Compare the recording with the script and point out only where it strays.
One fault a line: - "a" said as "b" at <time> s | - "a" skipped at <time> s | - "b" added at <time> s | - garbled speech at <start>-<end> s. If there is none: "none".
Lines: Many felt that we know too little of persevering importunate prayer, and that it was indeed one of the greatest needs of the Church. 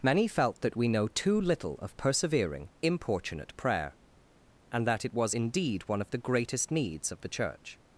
none